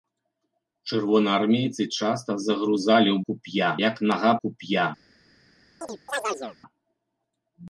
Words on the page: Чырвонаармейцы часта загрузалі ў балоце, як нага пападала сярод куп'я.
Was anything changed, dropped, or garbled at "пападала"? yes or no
yes